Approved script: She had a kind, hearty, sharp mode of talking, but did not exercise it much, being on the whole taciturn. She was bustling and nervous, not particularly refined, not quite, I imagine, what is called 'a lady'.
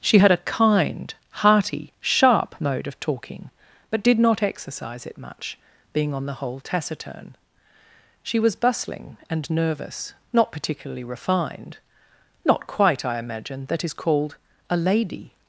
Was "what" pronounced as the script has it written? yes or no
no